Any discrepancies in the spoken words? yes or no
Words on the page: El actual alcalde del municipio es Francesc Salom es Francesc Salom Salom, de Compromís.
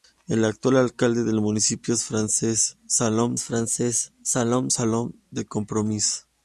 no